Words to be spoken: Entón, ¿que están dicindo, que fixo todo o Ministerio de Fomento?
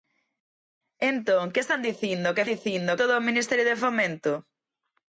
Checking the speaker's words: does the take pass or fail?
fail